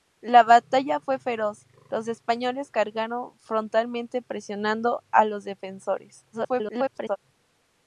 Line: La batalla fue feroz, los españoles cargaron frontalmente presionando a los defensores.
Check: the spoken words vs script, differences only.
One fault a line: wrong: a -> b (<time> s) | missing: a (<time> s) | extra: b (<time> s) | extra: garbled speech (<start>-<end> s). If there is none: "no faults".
extra: garbled speech (6.3-7.2 s)